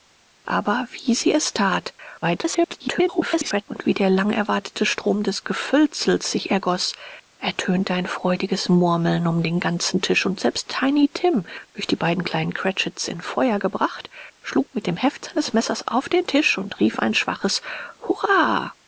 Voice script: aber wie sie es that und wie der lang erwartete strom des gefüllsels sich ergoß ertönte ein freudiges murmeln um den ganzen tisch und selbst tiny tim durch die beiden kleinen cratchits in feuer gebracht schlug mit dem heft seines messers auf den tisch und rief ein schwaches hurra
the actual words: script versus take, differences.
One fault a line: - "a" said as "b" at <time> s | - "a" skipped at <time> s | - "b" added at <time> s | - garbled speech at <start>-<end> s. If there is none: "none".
- garbled speech at 2.2-3.6 s